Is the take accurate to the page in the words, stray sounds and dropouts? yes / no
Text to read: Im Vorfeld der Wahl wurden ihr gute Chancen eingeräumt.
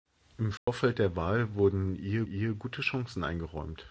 no